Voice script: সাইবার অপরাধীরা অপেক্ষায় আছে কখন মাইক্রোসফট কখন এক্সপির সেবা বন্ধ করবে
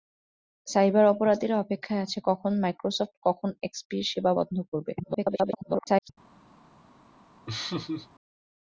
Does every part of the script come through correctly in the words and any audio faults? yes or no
no